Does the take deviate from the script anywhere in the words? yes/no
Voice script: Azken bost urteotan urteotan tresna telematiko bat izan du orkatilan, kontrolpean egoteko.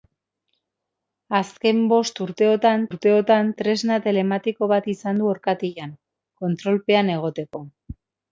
no